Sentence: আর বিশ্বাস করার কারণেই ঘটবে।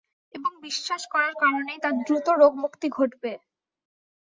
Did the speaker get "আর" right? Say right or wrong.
wrong